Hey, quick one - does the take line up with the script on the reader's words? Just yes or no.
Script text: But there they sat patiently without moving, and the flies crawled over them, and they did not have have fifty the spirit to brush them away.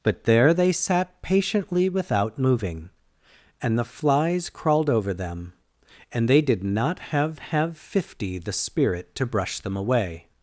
yes